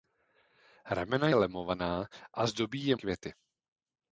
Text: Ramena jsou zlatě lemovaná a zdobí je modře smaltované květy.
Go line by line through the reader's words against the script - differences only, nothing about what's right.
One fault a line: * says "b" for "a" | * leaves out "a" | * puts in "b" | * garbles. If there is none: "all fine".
* leaves out "jsou zlatě"
* leaves out "modře smaltované"